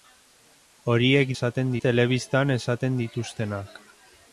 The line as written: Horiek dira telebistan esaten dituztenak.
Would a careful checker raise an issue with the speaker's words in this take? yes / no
yes